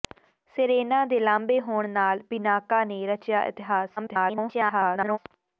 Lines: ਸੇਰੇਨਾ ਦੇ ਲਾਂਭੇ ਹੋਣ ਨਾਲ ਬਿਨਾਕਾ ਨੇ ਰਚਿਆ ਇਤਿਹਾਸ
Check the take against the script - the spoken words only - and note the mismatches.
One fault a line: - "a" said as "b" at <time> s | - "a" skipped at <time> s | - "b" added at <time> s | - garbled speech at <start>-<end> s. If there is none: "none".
- garbled speech at 4.0-5.2 s